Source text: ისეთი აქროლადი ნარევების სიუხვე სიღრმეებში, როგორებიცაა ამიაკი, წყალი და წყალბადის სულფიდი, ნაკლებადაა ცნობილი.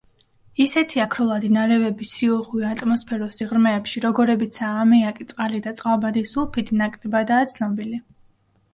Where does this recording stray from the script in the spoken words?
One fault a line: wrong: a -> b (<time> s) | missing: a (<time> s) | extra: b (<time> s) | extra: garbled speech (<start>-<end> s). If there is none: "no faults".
extra: ატმოსფეროს (2.7 s)